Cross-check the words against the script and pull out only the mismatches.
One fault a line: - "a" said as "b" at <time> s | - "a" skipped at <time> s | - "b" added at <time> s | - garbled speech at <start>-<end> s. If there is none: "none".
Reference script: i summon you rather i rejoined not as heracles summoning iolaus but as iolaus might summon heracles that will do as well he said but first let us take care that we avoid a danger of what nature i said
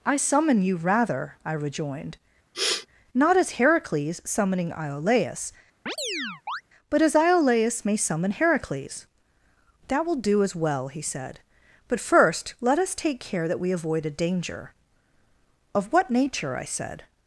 - "might" said as "may" at 7.9 s